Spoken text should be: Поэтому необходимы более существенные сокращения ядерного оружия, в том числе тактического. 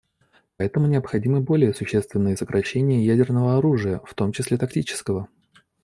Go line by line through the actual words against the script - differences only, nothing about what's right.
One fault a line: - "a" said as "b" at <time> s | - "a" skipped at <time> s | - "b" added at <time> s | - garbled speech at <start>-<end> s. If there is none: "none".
none